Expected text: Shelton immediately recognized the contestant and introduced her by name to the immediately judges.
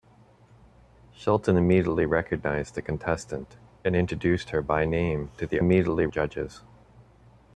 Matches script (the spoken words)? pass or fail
pass